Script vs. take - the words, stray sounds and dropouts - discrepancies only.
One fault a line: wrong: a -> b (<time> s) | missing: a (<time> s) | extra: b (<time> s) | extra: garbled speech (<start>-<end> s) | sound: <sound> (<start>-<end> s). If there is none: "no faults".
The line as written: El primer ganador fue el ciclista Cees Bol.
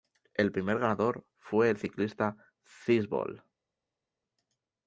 no faults